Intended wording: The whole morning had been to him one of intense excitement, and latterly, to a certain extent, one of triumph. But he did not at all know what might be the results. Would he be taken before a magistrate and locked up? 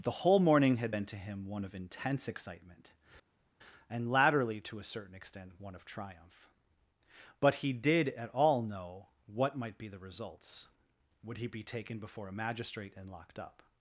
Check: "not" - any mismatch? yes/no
yes